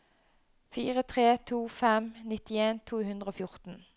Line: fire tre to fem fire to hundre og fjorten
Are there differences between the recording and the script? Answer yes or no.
yes